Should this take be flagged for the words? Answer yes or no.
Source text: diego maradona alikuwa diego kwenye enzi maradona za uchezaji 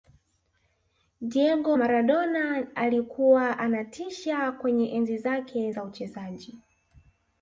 yes